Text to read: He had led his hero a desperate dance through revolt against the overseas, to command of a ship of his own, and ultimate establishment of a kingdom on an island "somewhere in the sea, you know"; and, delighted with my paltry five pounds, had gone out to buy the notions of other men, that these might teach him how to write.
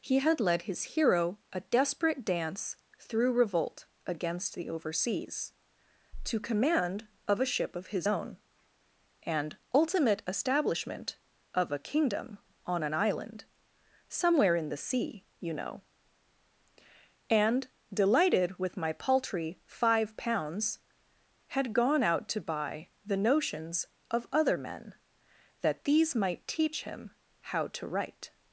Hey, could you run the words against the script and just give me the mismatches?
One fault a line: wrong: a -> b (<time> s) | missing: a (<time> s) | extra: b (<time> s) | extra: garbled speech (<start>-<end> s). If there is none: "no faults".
no faults